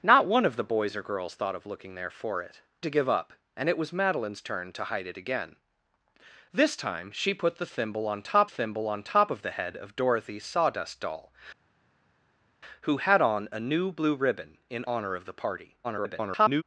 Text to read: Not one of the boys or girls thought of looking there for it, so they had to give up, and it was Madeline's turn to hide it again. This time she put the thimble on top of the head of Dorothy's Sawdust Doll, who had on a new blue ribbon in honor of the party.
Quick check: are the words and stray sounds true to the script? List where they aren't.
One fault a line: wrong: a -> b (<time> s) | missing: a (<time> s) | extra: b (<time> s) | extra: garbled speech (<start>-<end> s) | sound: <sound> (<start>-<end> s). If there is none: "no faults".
missing: so they had (2.6 s)
extra: thimble on top (8.5 s)
extra: garbled speech (15.8-16.6 s)